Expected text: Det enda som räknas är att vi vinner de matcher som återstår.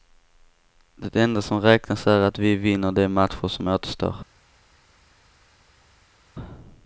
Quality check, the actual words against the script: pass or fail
pass